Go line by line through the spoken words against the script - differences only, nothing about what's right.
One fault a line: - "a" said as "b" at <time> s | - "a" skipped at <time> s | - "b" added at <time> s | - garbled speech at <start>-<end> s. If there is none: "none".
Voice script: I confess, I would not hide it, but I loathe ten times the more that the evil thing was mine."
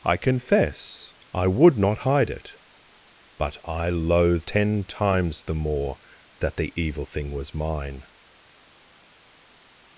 none